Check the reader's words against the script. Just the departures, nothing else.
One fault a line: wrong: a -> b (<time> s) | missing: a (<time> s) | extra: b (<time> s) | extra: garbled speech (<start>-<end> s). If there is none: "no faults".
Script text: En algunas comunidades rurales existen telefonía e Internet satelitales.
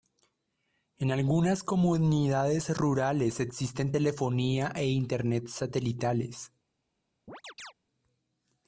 no faults